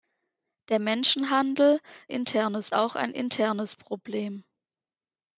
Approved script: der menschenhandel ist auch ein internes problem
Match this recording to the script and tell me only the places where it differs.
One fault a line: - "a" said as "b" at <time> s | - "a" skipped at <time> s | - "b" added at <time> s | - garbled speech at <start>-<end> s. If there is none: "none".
- "ist" said as "internes" at 2.1 s